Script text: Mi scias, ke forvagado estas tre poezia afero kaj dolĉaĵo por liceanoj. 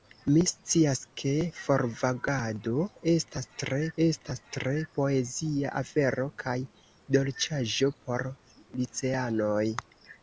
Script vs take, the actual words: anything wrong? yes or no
yes